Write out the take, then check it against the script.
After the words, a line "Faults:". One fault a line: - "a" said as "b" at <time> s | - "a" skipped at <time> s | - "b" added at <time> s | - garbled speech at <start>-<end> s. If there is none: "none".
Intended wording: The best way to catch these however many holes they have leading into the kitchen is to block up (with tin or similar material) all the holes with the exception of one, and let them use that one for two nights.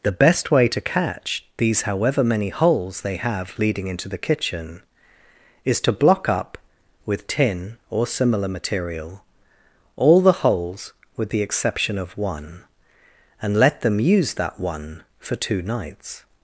The best way to catch these however many holes they have leading into the kitchen is to block up (with tin or similar material) all the holes with the exception of one, and let them use that one for two nights.
Faults:
none